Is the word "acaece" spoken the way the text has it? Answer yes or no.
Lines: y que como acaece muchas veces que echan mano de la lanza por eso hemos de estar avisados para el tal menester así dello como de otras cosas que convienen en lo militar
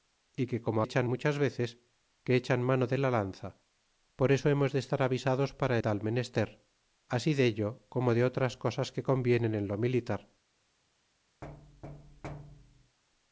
no